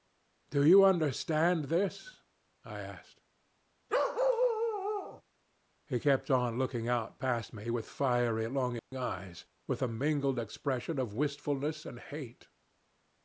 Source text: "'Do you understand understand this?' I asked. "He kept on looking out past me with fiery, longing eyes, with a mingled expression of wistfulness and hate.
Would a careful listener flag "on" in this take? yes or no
no